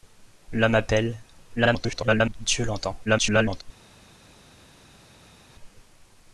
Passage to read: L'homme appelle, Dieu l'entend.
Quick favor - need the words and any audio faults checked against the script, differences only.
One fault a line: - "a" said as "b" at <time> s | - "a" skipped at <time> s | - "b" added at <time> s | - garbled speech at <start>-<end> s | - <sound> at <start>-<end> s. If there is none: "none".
- garbled speech at 1.6-2.4 s
- garbled speech at 3.0-3.6 s